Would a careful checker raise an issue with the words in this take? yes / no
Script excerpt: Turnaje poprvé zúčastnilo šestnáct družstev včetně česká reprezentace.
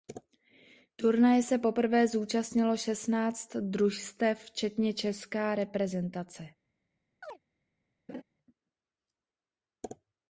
yes